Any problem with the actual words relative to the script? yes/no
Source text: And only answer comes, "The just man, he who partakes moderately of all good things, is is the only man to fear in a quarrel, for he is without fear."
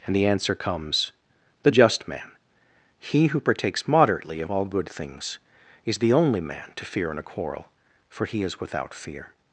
yes